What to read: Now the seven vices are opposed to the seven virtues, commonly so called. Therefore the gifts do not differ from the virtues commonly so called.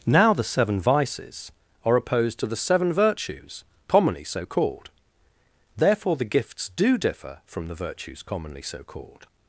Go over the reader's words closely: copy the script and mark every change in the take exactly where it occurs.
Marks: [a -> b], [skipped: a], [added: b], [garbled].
Now the seven vices are opposed to the seven virtues, commonly so called. Therefore the gifts do [skipped: not] differ from the virtues commonly so called.